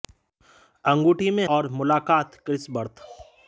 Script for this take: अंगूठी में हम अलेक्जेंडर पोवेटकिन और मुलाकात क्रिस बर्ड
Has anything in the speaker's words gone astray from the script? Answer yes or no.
yes